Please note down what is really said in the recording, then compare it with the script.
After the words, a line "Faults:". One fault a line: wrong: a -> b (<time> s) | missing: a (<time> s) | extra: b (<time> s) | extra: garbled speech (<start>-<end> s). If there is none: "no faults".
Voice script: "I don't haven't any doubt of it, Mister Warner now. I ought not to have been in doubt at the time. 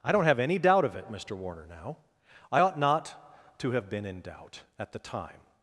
"I don't have any doubt of it, Mister Warner now. I ought not to have been in doubt at the time.
Faults:
wrong: haven't -> have (0.2 s)